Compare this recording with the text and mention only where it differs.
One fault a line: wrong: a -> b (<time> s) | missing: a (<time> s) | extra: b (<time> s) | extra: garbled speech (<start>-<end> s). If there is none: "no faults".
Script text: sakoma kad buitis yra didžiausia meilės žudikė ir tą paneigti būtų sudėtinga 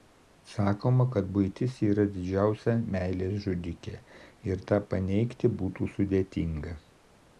no faults